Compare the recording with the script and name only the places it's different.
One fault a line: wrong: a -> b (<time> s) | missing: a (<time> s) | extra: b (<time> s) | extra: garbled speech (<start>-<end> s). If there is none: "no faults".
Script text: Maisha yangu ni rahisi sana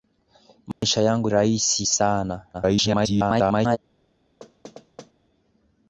missing: ni (1.3 s)
extra: garbled speech (2.5-3.8 s)